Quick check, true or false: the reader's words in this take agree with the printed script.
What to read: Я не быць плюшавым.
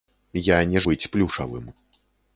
true